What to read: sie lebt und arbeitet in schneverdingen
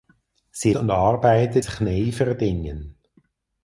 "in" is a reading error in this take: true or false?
true